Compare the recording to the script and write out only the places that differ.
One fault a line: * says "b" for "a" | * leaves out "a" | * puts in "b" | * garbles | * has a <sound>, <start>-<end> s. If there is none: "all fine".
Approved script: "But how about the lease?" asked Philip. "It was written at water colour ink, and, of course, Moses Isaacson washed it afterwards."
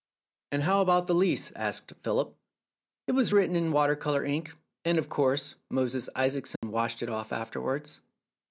* says "And" for "But"
* says "in" for "at"
* has a dropout, 6.6-6.6 s
* puts in "off"